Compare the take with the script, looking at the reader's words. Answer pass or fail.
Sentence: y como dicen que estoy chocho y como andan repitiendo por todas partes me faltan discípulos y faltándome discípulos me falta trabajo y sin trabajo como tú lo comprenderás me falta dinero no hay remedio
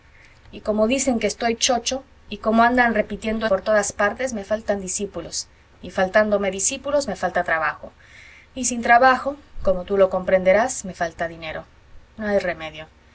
pass